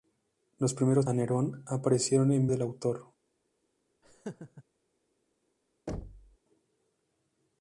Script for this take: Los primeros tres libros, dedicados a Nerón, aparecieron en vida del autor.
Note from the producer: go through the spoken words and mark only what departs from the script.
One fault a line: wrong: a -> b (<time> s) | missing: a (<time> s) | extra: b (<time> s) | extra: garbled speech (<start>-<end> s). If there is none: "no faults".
missing: tres libros dedicados (1.1 s)
missing: vida (2.5 s)